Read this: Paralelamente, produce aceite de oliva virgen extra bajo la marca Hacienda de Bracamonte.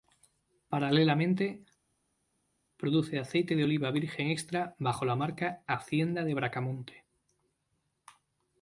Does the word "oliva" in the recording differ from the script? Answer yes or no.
no